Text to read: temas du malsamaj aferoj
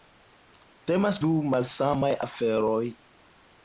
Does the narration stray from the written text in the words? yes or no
no